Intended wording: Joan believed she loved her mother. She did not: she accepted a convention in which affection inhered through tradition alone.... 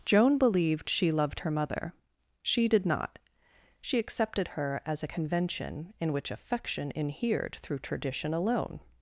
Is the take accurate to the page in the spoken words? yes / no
no